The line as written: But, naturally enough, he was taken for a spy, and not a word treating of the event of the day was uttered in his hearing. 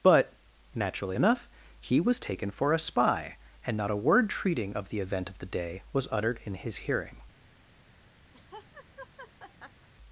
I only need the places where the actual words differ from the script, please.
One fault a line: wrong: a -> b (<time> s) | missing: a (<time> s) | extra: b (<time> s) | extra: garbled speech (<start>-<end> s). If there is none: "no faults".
no faults